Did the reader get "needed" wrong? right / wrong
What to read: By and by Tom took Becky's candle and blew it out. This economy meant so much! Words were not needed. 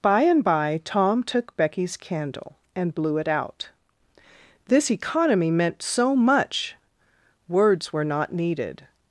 right